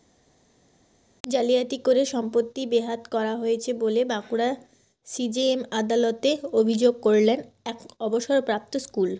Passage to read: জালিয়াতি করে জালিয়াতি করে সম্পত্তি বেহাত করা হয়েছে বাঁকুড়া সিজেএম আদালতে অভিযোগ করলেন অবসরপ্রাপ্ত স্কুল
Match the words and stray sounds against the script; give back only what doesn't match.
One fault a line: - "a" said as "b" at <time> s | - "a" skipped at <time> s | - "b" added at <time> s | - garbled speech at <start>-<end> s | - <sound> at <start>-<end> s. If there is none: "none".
- "জালিয়াতি করে" skipped at 2.0 s
- "বলে" added at 3.7 s
- "এক" added at 7.6 s